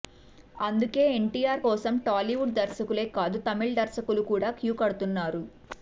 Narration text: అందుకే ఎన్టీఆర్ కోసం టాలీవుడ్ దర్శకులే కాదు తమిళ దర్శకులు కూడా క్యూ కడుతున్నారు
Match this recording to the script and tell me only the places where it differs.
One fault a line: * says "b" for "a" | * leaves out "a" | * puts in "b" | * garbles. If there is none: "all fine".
all fine